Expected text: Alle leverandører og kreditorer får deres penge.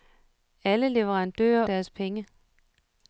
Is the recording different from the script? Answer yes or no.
yes